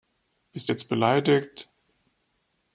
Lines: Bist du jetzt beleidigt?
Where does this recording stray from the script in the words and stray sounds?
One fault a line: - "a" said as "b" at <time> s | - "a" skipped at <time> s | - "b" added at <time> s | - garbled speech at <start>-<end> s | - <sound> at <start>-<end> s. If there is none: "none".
none